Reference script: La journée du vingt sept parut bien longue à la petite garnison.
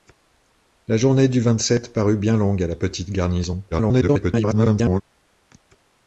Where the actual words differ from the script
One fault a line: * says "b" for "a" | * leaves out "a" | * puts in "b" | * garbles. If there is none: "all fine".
* garbles